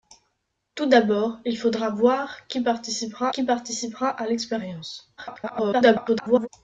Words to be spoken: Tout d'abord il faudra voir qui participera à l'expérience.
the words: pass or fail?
fail